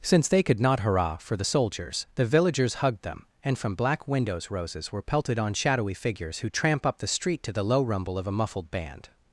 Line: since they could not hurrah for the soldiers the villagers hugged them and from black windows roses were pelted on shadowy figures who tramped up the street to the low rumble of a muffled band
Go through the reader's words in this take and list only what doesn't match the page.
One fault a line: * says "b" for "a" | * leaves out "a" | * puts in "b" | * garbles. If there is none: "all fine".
* says "tramp" for "tramped"